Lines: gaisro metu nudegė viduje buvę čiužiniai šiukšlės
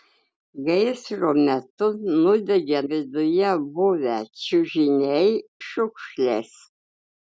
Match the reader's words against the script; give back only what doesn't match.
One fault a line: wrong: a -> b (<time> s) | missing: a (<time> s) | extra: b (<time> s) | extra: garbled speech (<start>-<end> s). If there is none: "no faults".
no faults